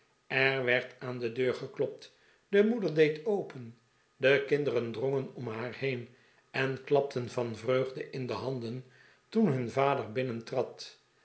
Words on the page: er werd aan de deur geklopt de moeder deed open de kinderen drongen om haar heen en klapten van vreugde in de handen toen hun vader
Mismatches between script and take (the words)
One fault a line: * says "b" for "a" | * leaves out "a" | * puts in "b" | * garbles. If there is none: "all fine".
all fine